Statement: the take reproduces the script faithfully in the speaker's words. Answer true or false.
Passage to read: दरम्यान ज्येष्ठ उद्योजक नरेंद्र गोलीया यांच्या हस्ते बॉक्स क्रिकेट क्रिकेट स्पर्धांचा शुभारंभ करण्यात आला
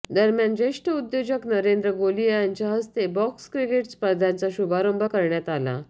false